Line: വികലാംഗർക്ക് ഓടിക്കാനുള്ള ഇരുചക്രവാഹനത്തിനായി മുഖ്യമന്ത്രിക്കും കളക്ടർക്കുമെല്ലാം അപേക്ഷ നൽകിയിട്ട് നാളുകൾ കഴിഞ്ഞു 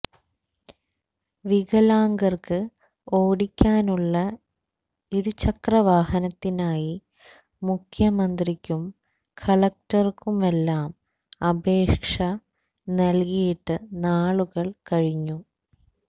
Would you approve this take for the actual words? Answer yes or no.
yes